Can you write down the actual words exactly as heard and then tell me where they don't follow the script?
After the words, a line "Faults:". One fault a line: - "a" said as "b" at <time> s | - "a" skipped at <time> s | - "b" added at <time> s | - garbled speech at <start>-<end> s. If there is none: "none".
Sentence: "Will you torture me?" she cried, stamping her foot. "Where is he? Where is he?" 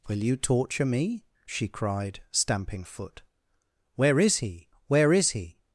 "Will you torture me?" she cried, stamping foot. "Where is he? Where is he?"
Faults:
- "her" skipped at 2.8 s